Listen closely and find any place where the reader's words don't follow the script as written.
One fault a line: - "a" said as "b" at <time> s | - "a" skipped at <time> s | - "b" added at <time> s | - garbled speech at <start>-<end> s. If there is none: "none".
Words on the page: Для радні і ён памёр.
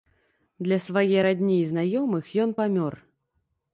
- "свае" added at 0.8 s
- "знаёмых" added at 1.7 s